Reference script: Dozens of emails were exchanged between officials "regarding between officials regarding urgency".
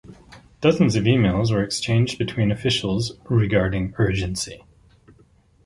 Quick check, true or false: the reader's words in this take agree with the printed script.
false